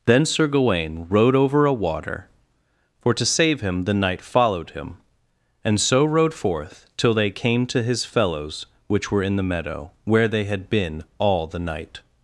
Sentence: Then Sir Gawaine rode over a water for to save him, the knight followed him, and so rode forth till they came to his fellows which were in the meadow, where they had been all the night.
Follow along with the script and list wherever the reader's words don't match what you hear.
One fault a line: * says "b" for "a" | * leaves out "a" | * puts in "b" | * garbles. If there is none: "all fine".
all fine